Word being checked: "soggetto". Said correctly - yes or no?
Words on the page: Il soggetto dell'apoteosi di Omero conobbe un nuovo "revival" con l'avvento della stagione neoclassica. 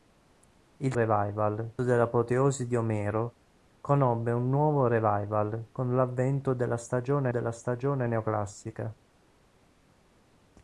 no